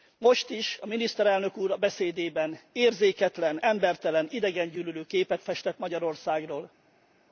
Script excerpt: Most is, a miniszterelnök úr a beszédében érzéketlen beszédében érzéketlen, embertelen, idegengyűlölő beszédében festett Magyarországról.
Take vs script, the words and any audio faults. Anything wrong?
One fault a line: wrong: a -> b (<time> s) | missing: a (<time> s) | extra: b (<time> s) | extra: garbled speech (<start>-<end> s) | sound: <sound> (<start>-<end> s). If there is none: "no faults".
missing: beszédében érzéketlen (3.6 s)
wrong: beszédében -> képet (5.0 s)